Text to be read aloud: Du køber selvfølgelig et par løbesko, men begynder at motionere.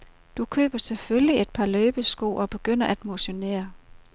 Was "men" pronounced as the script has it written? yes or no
no